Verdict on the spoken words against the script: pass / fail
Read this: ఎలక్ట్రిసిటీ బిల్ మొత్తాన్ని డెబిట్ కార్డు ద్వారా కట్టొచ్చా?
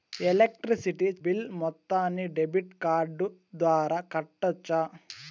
pass